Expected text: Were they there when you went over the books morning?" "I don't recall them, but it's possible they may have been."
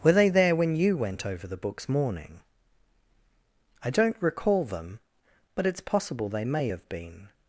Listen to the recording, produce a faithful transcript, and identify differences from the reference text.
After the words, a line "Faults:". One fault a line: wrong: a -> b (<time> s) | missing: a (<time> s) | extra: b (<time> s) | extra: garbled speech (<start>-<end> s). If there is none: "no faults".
Were they there when you went over the books morning?" "I don't recall them, but it's possible they may have been."
Faults:
no faults